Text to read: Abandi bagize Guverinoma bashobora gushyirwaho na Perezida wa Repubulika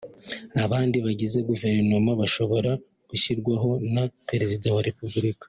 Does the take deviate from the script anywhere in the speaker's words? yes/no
no